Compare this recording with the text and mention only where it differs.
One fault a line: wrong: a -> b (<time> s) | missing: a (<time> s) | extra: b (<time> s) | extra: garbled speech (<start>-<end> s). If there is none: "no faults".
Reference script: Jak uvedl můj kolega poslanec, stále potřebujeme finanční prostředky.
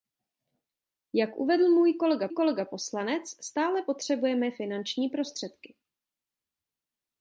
extra: kolega (2.3 s)